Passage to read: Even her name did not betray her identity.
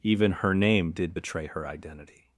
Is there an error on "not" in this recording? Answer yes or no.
yes